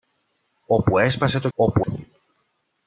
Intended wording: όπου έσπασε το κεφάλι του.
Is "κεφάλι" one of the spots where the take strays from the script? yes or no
yes